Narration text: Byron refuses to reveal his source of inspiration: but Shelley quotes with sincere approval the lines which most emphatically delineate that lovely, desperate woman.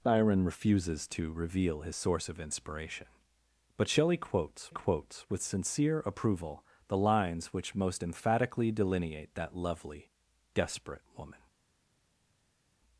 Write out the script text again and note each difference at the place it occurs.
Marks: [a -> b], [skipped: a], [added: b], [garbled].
Byron refuses to reveal his source of inspiration: but Shelley quotes [added: quotes] with sincere approval the lines which most emphatically delineate that lovely, desperate woman.